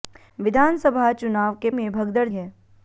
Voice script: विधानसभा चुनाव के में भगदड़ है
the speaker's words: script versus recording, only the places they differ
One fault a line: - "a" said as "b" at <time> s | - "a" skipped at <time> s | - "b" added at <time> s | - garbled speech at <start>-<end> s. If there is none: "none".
none